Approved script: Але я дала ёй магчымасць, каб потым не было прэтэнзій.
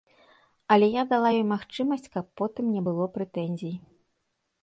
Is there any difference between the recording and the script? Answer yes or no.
no